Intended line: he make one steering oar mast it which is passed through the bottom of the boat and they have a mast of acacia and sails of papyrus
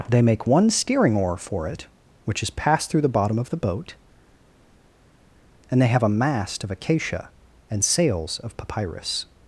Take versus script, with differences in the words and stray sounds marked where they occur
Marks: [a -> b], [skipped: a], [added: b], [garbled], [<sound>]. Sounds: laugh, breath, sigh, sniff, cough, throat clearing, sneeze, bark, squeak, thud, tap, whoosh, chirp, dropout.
[he -> they] make one steering oar [mast -> for] it which is passed through the bottom of the boat and they have a mast of acacia and sails of papyrus